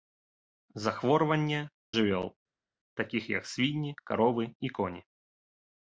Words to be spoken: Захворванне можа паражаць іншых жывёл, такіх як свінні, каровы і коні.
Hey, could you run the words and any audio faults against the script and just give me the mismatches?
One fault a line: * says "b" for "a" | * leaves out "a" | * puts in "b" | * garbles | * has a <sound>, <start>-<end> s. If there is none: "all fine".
* leaves out "можа паражаць іншых"